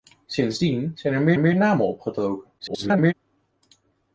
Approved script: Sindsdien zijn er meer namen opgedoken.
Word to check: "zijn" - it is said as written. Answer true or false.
true